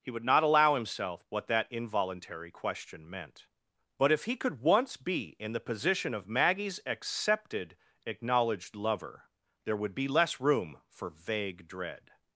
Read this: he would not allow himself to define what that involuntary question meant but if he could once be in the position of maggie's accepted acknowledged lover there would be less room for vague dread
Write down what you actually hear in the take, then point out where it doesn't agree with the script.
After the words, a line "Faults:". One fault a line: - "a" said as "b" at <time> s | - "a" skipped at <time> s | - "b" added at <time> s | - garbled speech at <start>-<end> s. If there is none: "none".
he would not allow himself what that involuntary question meant but if he could once be in the position of maggie's accepted acknowledged lover there would be less room for vague dread
Faults:
- "to define" skipped at 1.2 s